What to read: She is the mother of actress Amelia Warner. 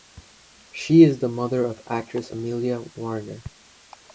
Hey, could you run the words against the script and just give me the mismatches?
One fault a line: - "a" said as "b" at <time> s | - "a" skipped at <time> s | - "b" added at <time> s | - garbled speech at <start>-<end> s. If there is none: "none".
none